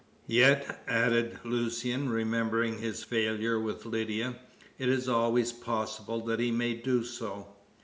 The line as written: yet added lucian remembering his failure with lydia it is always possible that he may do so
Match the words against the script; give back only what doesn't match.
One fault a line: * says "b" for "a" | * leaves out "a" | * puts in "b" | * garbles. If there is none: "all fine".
all fine